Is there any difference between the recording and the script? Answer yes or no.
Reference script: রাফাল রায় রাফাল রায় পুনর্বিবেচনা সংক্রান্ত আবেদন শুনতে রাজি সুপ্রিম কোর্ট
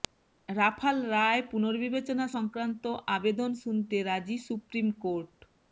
yes